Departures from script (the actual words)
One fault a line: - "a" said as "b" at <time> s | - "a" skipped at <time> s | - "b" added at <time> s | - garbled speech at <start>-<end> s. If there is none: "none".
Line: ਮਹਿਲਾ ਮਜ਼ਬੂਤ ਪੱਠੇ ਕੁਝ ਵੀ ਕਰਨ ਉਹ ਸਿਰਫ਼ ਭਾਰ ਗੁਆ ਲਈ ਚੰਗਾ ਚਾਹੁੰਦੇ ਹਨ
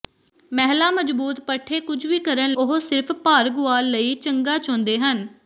none